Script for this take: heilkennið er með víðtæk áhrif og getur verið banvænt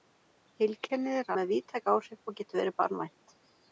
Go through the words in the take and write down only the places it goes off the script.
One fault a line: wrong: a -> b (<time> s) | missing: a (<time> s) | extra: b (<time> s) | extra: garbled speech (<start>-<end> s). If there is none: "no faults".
no faults